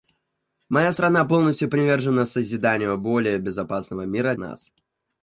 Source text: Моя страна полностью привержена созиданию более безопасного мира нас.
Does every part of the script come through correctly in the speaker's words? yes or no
yes